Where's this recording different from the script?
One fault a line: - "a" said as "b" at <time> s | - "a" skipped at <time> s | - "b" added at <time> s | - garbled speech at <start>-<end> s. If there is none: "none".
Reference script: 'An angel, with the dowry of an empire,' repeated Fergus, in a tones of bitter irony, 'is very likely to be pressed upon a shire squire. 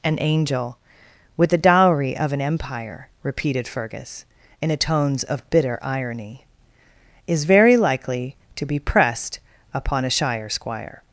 none